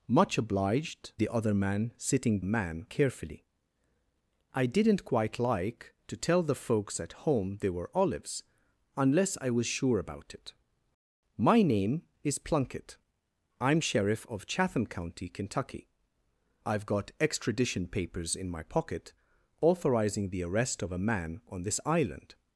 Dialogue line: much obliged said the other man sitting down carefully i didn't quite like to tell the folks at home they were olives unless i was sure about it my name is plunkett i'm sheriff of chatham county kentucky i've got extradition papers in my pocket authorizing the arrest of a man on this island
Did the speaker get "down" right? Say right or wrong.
wrong